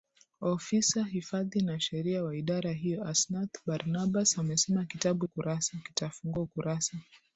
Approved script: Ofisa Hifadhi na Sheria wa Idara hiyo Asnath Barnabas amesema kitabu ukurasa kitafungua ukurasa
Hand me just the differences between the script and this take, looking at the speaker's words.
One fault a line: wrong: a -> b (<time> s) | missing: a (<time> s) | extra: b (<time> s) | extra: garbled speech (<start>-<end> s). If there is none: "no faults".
no faults